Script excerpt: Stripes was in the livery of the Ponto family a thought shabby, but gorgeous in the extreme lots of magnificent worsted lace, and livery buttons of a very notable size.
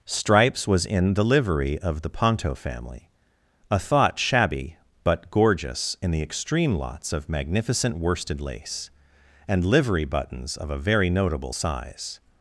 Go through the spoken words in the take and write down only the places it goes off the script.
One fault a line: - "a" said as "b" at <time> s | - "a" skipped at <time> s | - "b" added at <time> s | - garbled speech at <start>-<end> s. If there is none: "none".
none